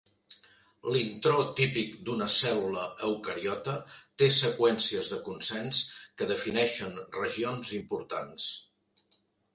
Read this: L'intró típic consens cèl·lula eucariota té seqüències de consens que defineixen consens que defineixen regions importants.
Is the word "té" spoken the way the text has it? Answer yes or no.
yes